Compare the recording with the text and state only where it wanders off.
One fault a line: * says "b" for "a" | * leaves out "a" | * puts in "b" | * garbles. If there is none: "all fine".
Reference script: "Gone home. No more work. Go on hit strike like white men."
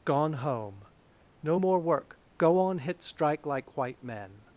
all fine